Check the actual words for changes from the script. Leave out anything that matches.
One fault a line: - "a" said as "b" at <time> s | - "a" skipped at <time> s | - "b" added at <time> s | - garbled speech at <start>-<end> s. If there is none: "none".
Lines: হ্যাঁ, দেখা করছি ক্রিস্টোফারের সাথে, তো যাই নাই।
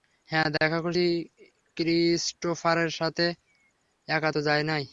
- "একা" added at 4.1 s